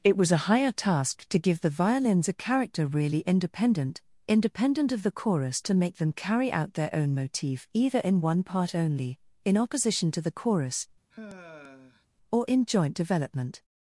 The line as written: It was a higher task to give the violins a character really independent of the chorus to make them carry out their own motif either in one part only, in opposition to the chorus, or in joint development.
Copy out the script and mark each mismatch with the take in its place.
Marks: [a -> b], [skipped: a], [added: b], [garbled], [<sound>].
It was a higher task to give the violins a character really independent [added: independent] of the chorus to make them carry out their own motif either in one part only, in opposition to the chorus, [sigh] or in joint development.